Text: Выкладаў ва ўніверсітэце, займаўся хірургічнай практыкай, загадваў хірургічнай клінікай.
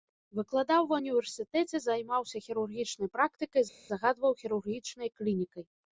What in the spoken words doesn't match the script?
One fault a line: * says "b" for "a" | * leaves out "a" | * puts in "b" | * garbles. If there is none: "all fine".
all fine